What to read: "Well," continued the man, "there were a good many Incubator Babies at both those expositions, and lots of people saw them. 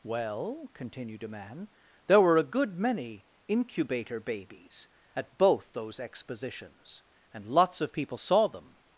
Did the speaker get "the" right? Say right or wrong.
wrong